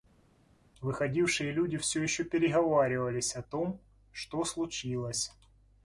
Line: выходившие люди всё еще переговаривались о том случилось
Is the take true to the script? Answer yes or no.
no